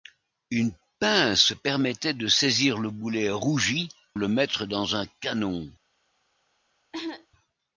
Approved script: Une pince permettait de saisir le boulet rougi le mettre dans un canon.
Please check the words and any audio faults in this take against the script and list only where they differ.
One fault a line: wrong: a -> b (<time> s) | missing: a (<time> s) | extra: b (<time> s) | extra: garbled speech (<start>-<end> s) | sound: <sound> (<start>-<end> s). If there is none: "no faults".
sound: cough (6.9-7.3 s)